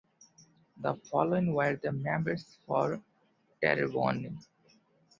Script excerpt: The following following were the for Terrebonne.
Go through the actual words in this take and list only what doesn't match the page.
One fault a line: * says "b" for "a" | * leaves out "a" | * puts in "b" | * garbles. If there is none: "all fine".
* leaves out "following"
* puts in "members"